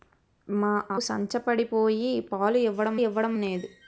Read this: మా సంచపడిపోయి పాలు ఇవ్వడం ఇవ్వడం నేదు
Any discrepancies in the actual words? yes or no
no